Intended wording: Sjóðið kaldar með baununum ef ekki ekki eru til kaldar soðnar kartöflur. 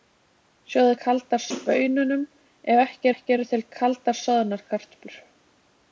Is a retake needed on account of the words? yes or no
no